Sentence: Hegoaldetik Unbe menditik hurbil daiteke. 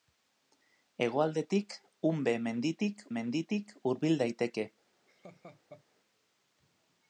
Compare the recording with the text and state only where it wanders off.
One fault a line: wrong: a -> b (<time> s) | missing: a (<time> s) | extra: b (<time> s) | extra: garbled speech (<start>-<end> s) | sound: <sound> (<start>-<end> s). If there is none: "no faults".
extra: menditik (3.2 s)
sound: laugh (5.1-5.8 s)